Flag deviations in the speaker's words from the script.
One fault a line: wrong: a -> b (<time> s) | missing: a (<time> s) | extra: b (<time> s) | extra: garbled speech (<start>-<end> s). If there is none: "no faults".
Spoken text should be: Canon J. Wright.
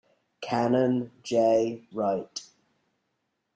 no faults